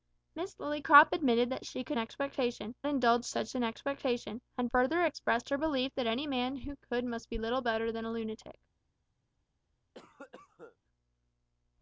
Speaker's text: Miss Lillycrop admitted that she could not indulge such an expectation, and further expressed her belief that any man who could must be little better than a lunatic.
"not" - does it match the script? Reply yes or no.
no